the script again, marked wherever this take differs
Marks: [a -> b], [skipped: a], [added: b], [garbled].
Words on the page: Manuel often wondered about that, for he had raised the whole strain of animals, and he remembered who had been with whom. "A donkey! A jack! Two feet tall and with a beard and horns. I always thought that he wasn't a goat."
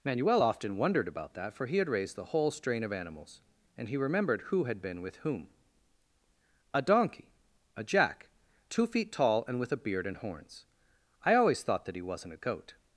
Manuel often wondered about that, for he had raised the whole strain of animals, and he remembered who had been with whom. "A donkey! A jack! Two feet tall and with a beard and horns. I always thought that he wasn't a goat."